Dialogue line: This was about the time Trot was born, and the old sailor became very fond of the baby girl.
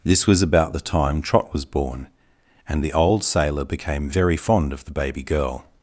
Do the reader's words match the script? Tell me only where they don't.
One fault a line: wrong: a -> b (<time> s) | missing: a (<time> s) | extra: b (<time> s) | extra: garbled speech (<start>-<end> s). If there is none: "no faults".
no faults